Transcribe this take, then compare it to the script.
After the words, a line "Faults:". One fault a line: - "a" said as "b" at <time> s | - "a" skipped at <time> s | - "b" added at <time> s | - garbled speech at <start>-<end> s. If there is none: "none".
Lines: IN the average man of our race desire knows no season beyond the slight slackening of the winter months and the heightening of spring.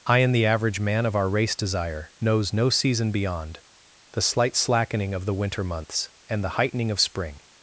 I and the average man of our race desire knows no season beyond the slight slackening of the winter months and the heightening of spring.
Faults:
- "IN" said as "I and" at 0.1 s